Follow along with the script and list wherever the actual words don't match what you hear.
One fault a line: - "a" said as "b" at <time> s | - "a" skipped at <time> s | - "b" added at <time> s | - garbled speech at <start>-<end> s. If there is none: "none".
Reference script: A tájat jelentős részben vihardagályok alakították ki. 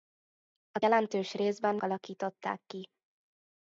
- "tájat" skipped at 0.8 s
- "vihardagályok" skipped at 1.8 s